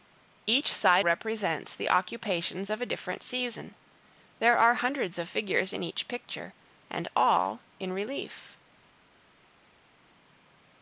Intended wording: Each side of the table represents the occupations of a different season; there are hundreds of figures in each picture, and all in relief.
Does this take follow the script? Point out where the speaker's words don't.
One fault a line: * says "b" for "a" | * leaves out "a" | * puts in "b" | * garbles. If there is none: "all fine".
* leaves out "of the table"